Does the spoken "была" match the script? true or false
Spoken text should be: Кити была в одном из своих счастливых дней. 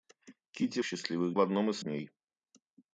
false